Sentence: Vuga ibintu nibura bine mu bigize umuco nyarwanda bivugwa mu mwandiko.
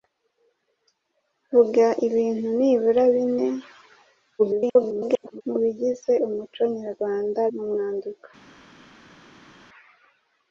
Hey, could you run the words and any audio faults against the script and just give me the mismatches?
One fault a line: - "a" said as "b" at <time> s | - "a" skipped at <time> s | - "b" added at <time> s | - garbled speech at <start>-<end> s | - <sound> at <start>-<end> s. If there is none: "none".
- garbled speech at 4.4-5.4 s
- "bivugwa" skipped at 7.4 s